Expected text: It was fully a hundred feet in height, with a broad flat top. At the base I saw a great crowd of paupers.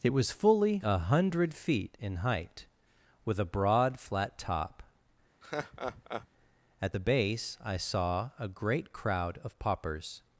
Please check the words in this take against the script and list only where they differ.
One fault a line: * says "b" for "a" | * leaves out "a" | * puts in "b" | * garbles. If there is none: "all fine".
all fine